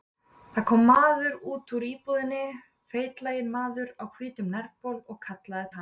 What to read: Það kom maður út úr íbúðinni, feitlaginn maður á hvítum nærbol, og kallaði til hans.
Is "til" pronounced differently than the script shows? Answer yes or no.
yes